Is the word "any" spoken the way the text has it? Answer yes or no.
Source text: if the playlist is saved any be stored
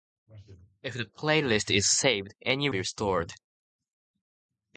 yes